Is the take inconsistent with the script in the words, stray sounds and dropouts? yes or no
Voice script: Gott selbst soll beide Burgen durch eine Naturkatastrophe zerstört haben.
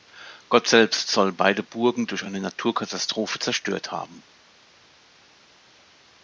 no